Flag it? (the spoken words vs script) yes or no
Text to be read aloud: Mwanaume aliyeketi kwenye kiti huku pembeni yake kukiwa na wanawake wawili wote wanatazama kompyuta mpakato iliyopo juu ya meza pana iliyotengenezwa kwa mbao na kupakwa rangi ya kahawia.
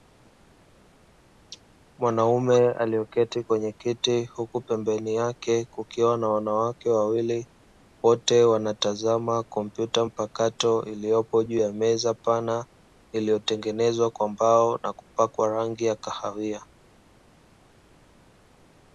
no